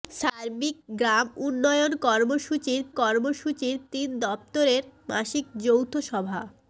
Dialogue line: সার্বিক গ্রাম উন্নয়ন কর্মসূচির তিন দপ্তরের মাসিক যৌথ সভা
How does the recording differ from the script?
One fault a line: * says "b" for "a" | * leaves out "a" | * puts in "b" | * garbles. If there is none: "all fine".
* puts in "কর্মসূচির"